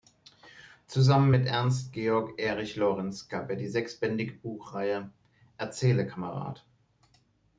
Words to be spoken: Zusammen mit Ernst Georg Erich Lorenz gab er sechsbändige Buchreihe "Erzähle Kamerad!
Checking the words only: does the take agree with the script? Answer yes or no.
no